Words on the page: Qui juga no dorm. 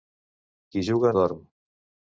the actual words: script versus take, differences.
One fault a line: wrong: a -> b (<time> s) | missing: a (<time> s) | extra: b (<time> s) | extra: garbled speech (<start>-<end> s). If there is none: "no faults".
missing: no (1.1 s)